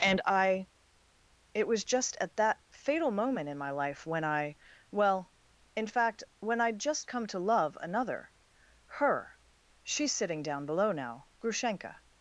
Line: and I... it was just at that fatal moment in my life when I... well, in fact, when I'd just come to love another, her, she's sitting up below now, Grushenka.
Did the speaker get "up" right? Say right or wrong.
wrong